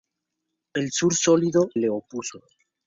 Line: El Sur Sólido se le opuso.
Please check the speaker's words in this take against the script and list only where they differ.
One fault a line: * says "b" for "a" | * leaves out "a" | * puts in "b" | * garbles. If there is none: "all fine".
* leaves out "se"